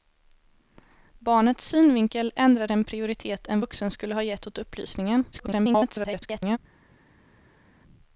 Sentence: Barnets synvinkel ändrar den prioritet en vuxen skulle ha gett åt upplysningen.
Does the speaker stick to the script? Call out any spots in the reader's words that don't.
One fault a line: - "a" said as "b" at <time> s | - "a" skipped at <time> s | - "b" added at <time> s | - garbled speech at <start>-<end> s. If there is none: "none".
- garbled speech at 5.3-6.6 s